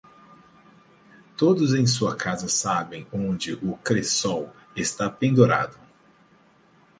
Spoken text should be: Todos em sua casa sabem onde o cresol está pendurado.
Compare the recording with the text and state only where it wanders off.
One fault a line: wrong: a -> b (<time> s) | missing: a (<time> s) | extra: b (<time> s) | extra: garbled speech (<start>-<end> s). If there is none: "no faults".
no faults